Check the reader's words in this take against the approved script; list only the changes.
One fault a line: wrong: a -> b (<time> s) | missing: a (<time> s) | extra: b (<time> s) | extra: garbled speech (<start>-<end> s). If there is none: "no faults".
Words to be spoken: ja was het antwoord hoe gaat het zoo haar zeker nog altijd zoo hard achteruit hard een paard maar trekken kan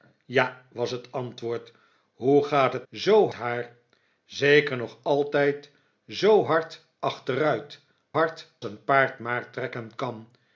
no faults